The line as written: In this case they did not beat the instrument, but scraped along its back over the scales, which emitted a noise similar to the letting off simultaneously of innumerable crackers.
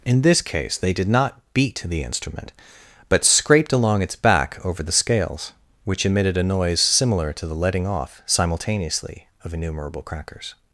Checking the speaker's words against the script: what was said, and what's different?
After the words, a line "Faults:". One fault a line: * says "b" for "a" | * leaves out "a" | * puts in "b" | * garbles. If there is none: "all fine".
In this case they did not beat the instrument, but scraped along its back over the scales, which emitted a noise similar to the letting off simultaneously of innumerable crackers.
Faults:
all fine